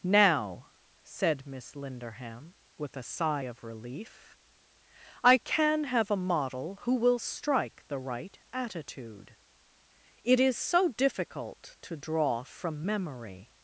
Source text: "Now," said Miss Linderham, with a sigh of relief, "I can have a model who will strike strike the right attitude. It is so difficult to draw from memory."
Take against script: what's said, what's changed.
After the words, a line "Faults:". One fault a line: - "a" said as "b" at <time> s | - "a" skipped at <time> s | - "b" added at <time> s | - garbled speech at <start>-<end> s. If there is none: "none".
"Now," said Miss Linderham, with a sigh of relief, "I can have a model who will strike the right attitude. It is so difficult to draw from memory."
Faults:
- "strike" skipped at 7.8 s